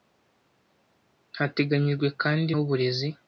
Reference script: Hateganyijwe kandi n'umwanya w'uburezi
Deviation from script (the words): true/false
true